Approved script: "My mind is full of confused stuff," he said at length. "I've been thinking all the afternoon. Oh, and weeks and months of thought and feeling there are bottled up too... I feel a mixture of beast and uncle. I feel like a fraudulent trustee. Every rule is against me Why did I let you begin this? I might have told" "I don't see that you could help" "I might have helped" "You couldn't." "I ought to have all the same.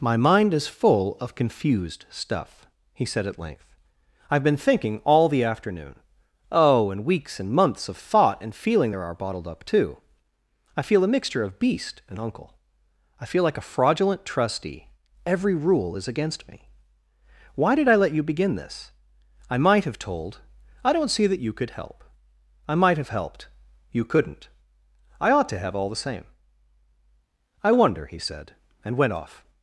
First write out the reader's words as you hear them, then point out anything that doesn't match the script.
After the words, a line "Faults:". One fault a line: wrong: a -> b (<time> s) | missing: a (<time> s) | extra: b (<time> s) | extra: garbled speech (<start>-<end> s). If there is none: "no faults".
"My mind is full of confused stuff," he said at length. "I've been thinking all the afternoon. Oh, and weeks and months of thought and feeling there are bottled up too... I feel a mixture of beast and uncle. I feel like a fraudulent trustee. Every rule is against me Why did I let you begin this? I might have told" "I don't see that you could help" "I might have helped" "You couldn't." "I ought to have all the same. "I wonder," he said, and went off
Faults:
extra: I wonder he said and went off (27.6 s)